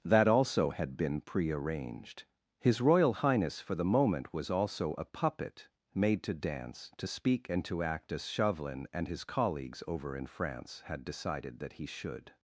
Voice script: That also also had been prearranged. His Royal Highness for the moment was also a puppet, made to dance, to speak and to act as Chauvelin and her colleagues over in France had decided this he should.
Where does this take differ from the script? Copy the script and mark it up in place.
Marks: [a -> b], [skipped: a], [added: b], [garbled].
That also [skipped: also] had been prearranged. His Royal Highness for the moment was also a puppet, made to dance, to speak and to act as Chauvelin and [her -> his] colleagues over in France had decided [this -> that] he should.